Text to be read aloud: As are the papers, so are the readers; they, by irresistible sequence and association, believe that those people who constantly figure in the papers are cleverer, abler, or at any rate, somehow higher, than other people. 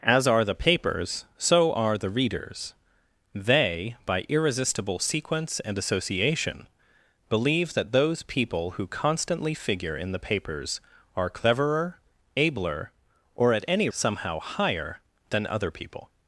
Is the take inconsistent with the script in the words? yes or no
yes